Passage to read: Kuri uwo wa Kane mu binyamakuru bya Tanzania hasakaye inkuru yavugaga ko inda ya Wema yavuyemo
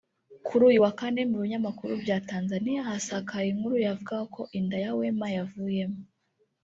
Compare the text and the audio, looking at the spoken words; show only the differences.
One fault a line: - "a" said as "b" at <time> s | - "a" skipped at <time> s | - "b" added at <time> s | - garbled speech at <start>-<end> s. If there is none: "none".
- "uwo" said as "uyu" at 0.7 s